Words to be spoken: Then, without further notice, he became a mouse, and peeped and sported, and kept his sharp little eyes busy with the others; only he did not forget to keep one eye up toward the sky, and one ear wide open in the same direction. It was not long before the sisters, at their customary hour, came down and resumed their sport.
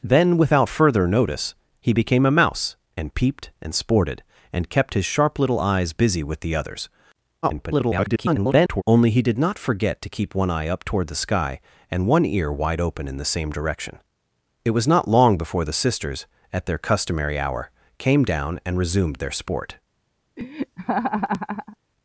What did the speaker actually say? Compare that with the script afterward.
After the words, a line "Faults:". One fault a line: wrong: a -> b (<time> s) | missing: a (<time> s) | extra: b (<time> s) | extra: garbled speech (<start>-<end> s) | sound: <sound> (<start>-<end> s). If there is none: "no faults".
Then, without further notice, he became a mouse, and peeped and sported, and kept his sharp little eyes busy with the others; [garbled] only he did not forget to keep one eye up toward the sky, and one ear wide open in the same direction. It was not long before the sisters, at their customary hour, came down and resumed their sport.
Faults:
extra: garbled speech (7.4-8.8 s)
sound: laugh (20.4-21.8 s)